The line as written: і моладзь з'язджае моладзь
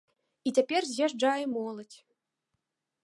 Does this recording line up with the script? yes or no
no